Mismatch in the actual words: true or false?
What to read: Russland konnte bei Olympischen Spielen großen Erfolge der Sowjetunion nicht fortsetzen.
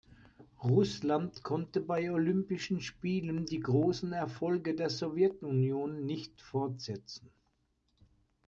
true